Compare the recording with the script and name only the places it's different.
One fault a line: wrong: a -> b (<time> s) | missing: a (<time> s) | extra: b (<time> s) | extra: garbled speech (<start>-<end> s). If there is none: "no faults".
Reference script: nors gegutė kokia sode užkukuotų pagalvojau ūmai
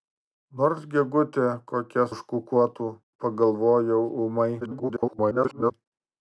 missing: sode (2.1 s)
extra: garbled speech (4.6-5.7 s)